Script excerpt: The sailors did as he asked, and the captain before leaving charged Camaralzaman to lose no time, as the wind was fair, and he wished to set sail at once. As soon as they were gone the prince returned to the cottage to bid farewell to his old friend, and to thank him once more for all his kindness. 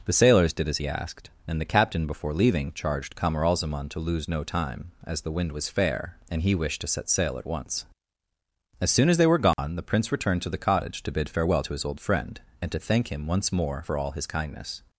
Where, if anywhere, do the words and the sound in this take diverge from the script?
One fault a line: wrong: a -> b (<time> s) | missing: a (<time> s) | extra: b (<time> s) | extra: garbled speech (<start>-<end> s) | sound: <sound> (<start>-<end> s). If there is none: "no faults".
sound: dropout (9.5-9.6 s)